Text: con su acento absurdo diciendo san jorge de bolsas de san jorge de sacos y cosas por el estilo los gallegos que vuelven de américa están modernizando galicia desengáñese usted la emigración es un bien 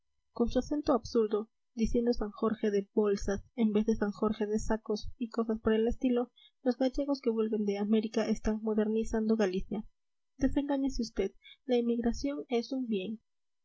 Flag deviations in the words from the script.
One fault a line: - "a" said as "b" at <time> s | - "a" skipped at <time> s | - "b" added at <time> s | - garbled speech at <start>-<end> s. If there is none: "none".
- "en vez" added at 3.5 s